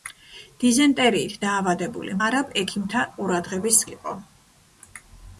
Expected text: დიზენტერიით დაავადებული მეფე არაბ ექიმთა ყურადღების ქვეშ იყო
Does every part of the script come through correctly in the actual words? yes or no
no